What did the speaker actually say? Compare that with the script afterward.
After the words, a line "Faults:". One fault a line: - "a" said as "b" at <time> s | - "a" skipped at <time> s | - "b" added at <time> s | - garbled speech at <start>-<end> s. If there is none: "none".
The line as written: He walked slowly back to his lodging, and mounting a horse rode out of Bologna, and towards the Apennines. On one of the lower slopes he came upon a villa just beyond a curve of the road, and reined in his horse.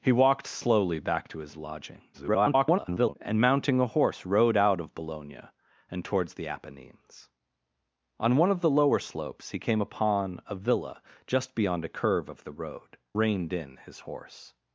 He walked slowly back to his lodging, [garbled] and mounting a horse rode out of Bologna, and towards the Apennines. On one of the lower slopes he came upon a villa just beyond a curve of the road, reined in his horse.
Faults:
- garbled speech at 2.1-3.1 s
- "and" skipped at 13.0 s